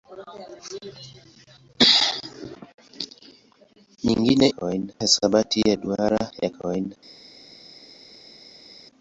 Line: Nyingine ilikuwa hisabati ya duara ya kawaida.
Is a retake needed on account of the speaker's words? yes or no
yes